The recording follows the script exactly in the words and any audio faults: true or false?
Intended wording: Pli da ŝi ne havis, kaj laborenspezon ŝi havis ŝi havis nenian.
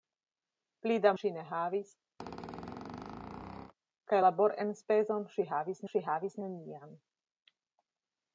false